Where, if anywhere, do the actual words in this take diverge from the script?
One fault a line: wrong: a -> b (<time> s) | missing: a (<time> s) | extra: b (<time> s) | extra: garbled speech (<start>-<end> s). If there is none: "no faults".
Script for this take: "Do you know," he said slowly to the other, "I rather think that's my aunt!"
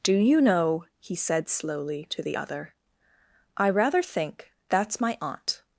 no faults